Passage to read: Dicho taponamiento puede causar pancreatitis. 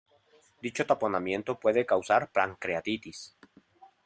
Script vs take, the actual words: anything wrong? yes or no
no